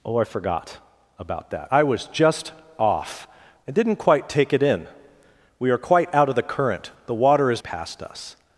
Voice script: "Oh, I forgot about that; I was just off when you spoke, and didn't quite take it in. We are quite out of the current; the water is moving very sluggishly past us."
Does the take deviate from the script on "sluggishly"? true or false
true